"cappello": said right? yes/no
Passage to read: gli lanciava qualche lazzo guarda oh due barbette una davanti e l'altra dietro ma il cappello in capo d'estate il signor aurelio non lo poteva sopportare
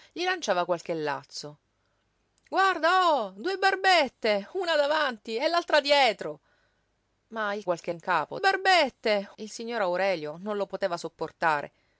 no